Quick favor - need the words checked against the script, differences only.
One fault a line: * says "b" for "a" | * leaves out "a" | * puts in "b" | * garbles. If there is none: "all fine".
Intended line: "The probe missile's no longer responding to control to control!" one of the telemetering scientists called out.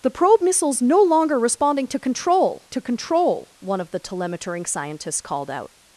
all fine